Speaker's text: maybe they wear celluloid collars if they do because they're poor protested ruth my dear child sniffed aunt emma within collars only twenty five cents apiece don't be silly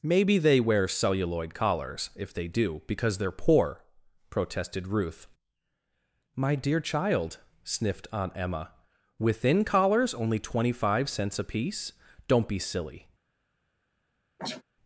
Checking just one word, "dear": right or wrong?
right